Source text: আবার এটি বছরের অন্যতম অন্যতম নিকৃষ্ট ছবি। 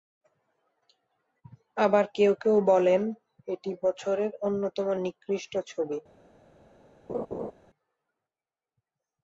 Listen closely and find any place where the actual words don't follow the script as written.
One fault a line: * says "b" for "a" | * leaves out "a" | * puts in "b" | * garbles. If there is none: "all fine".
* puts in "কেউ কেউ বলেন"
* leaves out "অন্যতম"